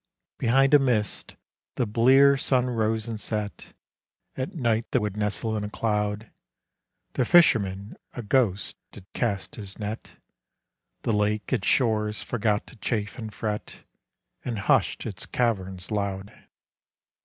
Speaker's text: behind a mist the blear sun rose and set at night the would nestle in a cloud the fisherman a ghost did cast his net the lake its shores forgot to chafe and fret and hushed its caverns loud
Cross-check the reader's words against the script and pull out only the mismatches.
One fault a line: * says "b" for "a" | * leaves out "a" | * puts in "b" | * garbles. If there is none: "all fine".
all fine